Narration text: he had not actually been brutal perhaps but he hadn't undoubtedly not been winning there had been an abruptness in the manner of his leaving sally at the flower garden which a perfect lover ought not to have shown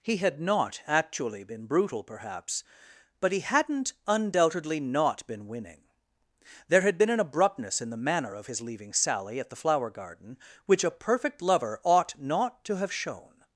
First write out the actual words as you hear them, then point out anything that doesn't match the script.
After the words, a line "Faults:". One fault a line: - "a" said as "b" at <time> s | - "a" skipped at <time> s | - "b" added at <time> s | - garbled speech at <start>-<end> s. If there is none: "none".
he had not actually been brutal perhaps but he hadn't undoubtedly not been winning there had been an abruptness in the manner of his leaving sally at the flower garden which a perfect lover ought not to have shown
Faults:
none